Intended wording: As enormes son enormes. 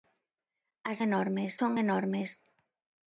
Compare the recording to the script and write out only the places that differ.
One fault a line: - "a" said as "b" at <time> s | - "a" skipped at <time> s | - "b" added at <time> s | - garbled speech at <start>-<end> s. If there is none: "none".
none